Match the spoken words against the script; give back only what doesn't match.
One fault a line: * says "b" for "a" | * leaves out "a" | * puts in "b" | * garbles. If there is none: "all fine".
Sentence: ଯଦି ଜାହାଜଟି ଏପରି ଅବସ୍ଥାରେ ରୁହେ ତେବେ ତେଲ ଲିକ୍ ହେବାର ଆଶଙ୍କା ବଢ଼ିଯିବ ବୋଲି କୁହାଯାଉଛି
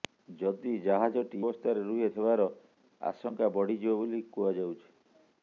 * leaves out "ଏପରି"
* leaves out "ତେବେ ତେଲ ଲିକ୍"